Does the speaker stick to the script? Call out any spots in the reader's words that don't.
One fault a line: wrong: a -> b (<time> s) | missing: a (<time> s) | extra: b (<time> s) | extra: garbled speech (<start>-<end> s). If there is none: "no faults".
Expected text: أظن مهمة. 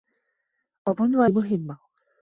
no faults